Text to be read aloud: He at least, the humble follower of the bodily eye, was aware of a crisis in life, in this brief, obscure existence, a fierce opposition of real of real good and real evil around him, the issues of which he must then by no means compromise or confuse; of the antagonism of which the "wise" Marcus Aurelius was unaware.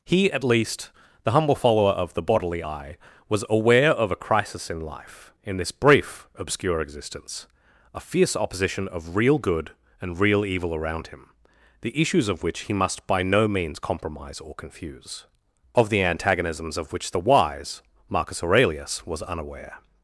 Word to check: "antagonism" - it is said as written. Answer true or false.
false